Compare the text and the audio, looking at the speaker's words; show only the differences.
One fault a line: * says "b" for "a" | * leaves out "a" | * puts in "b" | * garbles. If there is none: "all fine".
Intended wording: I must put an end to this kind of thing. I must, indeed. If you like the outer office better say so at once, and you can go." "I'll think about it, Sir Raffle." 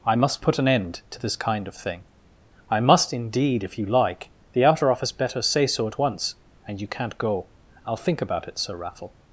* says "can't" for "can"